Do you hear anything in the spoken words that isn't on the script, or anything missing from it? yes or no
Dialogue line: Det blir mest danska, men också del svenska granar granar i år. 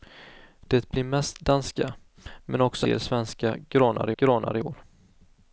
no